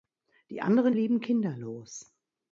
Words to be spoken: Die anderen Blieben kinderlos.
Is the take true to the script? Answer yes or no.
yes